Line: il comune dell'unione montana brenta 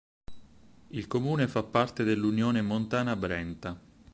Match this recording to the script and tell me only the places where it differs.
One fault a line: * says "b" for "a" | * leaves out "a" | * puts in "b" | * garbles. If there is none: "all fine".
* puts in "fa parte"